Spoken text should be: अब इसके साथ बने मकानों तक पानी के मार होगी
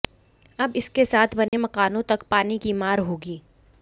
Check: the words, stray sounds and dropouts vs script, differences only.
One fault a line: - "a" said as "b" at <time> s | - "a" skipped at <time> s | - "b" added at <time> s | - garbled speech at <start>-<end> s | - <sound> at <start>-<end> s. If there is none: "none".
- dropout at 1.5-1.5 s
- "के" said as "की" at 2.6 s